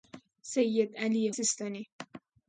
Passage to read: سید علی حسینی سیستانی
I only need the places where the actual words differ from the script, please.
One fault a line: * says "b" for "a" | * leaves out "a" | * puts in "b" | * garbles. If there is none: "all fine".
* leaves out "حسینی"